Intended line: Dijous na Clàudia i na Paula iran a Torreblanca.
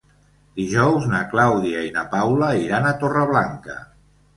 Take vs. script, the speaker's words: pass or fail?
pass